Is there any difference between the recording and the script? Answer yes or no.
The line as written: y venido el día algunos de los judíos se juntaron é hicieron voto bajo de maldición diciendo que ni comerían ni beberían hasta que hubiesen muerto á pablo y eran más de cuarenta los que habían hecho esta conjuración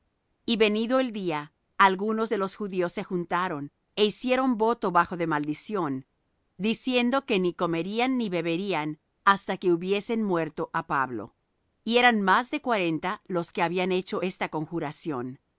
no